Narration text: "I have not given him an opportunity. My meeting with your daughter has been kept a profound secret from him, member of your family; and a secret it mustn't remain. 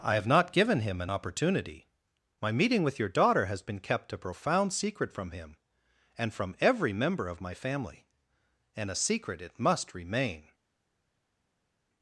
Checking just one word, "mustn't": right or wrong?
wrong